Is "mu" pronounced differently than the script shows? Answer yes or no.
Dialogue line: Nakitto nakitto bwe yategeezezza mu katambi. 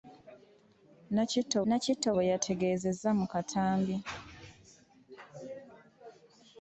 no